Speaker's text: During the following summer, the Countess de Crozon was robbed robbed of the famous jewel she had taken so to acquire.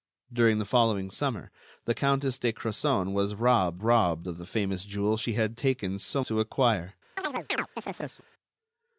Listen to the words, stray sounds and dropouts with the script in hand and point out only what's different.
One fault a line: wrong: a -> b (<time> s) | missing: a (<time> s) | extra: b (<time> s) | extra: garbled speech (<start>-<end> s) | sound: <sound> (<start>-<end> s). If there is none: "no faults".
sound: chirp (7.2-8.3 s)